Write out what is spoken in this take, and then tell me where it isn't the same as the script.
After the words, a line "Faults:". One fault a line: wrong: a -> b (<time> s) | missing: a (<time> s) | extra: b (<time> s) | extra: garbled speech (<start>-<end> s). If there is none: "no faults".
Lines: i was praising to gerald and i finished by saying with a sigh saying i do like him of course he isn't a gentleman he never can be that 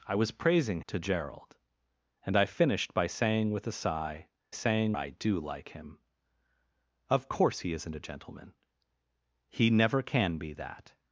i was praising to gerald and i finished by saying with a sigh saying i do like him of course he isn't a gentleman he never can be that
Faults:
no faults